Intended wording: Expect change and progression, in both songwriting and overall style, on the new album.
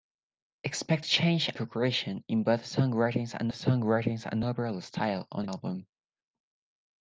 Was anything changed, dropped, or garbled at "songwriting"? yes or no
no